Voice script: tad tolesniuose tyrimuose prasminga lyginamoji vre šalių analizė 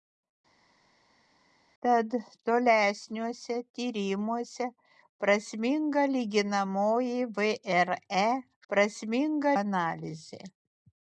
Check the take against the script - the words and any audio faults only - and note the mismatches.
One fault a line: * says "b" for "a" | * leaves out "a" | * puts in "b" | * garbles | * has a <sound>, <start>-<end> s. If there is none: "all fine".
* says "prasminga" for "šalių"